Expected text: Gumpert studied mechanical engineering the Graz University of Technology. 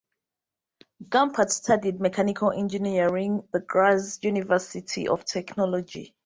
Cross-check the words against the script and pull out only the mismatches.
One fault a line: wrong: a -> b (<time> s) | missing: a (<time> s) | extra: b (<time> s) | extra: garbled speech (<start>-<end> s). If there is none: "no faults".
no faults